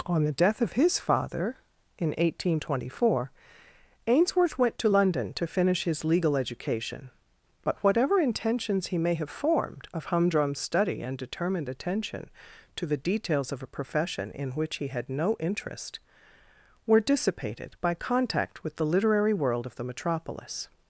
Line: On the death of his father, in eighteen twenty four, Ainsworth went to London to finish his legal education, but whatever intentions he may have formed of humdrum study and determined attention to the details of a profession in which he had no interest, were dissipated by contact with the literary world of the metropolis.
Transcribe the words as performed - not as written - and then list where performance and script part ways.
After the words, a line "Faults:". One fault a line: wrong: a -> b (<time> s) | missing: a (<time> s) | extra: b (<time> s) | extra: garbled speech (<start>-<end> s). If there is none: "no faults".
On the death of his father, in eighteen twenty four, Ainsworth went to London to finish his legal education, but whatever intentions he may have formed of humdrum study and determined attention to the details of a profession in which he had no interest, were dissipated by contact with the literary world of the metropolis.
Faults:
no faults